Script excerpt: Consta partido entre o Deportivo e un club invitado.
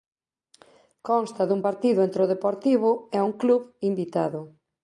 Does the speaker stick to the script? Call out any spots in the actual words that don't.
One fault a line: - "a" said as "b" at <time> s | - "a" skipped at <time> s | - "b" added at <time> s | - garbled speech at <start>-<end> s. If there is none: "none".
- "dun" added at 1.5 s